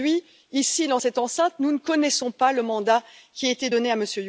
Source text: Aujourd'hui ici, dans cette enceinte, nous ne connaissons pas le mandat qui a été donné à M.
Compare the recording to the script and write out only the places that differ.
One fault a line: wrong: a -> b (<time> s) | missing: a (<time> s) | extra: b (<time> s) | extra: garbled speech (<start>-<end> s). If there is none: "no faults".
no faults